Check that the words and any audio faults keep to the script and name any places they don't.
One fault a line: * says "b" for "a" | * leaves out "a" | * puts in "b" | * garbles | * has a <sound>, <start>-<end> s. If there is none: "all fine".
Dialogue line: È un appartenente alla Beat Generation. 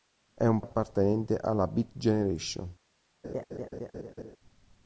* has a laugh, 3.2-4.4 s